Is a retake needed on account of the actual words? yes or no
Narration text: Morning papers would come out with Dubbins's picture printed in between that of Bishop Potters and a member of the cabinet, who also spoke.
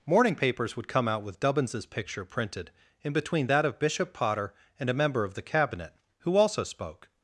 yes